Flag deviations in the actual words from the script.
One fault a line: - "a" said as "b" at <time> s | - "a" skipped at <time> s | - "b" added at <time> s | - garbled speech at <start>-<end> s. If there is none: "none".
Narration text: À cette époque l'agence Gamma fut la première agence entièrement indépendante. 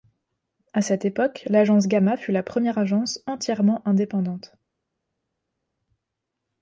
none